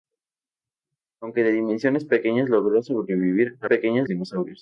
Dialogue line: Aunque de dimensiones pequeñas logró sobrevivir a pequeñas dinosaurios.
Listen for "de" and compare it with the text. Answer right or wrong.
right